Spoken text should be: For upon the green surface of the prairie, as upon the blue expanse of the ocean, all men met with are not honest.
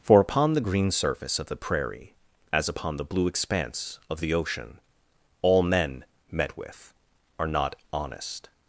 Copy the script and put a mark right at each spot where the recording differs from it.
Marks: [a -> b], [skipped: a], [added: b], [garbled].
For upon the green surface of the prairie, as upon the blue expanse of the ocean, all men met with are not honest.